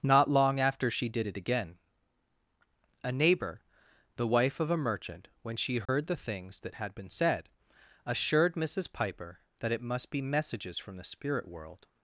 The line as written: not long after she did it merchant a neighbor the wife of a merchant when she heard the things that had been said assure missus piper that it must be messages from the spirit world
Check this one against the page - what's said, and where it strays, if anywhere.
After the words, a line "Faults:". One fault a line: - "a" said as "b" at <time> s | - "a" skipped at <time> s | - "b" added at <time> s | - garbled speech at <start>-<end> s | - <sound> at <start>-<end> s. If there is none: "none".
not long after she did it again a neighbor the wife of a merchant when she heard the things that had been said assured missus piper that it must be messages from the spirit world
Faults:
- "merchant" said as "again" at 1.4 s
- dropout at 5.9-5.9 s
- "assure" said as "assured" at 8.1 s